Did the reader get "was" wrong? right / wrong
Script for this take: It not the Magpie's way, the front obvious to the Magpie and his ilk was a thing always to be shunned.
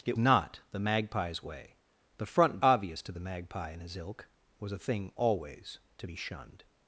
right